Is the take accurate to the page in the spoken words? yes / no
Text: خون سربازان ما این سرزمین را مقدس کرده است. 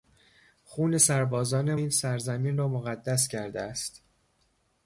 no